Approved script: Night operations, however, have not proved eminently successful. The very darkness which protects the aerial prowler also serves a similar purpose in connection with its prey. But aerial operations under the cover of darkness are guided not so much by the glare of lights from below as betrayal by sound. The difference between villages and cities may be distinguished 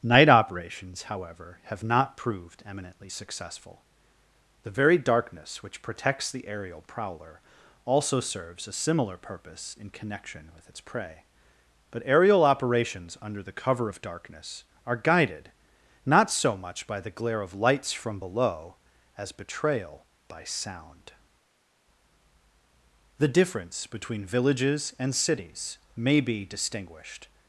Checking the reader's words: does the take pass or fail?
pass